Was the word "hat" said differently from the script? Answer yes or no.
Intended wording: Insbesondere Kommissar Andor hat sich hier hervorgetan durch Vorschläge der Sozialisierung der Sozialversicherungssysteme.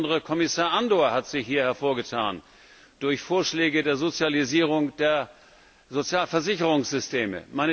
no